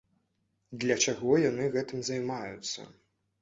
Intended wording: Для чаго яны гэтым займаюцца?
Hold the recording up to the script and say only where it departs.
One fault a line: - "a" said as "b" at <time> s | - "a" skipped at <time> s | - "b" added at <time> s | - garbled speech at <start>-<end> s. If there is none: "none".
none